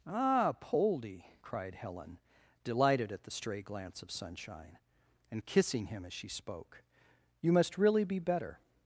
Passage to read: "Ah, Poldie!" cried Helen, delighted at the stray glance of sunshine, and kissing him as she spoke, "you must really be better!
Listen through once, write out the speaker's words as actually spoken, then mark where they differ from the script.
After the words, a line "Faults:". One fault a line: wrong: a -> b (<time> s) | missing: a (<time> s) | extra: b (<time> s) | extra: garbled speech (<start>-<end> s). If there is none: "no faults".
"Ah, Poldie!" cried Helen, delighted at the stray glance of sunshine, and kissing him as she spoke, "you must really be better!
Faults:
no faults